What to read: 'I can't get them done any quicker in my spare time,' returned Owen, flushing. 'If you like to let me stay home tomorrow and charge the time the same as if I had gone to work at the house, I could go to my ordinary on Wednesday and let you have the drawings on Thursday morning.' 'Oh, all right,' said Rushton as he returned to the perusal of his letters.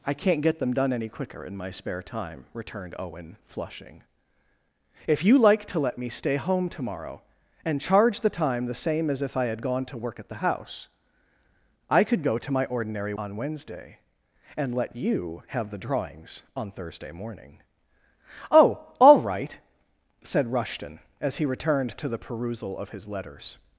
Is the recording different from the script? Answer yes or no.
no